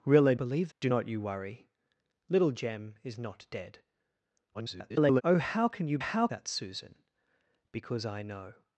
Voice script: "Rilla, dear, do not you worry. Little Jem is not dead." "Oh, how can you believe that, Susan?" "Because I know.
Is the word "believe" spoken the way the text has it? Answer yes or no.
no